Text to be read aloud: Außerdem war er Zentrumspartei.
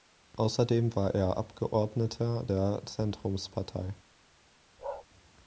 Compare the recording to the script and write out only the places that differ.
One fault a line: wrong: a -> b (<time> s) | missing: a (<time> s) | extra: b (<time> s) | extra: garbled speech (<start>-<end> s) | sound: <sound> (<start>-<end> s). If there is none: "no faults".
extra: Abgeordneter der (1.4 s)
sound: bark (4.8-5.1 s)